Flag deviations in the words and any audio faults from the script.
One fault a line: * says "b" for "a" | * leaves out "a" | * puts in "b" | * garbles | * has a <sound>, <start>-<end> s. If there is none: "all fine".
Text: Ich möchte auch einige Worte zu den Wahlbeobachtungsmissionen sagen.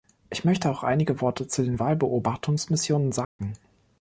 * has a dropout, 3.2-3.4 s